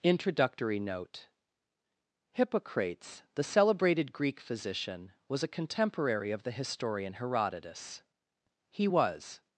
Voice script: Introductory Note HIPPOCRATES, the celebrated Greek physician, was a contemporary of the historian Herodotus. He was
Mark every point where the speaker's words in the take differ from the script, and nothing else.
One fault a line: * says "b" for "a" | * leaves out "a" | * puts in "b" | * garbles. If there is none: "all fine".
all fine